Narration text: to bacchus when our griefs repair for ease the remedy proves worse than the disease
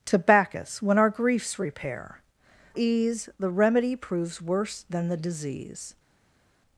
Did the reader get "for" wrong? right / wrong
wrong